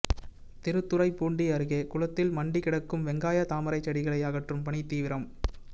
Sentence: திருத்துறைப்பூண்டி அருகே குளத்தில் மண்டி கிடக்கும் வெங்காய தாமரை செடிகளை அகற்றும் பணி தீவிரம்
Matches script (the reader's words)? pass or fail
pass